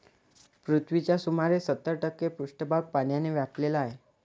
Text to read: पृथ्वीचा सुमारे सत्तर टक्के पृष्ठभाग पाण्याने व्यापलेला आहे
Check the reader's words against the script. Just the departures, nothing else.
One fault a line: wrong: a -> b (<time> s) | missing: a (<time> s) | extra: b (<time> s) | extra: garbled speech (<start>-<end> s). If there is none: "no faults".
no faults